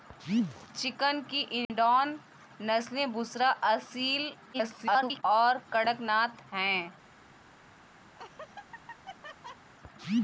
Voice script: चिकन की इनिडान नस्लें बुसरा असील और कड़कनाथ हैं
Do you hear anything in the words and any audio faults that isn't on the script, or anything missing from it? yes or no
yes